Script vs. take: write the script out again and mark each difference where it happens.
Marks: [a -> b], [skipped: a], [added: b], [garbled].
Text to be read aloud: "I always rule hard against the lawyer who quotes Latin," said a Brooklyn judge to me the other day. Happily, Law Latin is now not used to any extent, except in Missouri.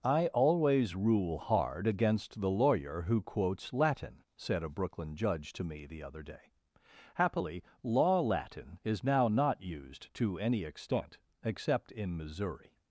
"I always rule hard against the lawyer who quotes Latin," said a Brooklyn judge to me the other day. Happily, Law Latin is now not used to any extent, except in Missouri.